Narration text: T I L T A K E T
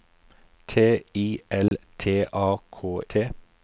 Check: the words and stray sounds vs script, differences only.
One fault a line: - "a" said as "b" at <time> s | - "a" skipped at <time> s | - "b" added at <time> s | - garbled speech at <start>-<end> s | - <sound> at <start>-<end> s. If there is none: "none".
- dropout at 1.7-1.7 s
- "E" skipped at 3.0 s